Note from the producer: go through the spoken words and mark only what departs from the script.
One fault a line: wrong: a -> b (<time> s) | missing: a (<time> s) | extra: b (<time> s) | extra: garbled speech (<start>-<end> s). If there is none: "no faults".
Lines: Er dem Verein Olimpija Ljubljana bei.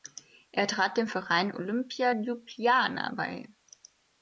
extra: trat (0.7 s)